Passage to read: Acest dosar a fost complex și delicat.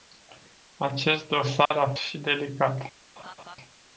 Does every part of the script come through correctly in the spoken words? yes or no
no